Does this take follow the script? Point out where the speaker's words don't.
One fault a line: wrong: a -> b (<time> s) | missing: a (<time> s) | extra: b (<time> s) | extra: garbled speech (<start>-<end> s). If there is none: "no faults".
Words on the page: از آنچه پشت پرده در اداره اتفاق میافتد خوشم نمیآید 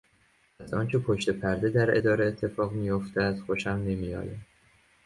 no faults